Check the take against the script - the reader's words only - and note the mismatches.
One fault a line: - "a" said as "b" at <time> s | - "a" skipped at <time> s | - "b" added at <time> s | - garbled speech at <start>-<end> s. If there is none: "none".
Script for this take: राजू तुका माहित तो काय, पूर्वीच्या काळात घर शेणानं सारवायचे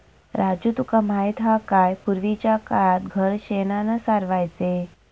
- "तो" said as "हा" at 1.4 s